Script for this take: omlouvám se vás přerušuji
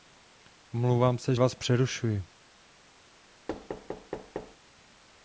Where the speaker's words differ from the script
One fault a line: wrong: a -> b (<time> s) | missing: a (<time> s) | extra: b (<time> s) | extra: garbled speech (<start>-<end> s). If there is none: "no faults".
no faults